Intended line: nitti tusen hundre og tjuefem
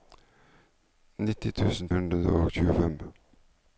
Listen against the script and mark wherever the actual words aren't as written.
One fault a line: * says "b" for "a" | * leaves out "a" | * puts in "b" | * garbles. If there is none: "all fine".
all fine